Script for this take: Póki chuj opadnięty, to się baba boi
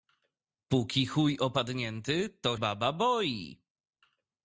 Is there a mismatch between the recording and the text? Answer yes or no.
yes